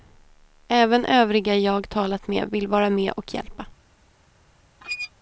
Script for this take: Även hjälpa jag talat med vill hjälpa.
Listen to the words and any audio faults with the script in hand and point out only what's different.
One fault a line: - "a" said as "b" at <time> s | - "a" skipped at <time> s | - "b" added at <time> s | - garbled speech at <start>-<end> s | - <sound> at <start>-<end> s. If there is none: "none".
- "hjälpa" said as "övriga" at 1.1 s
- "vara med och" added at 2.7 s
- squeak at 4.8-5.1 s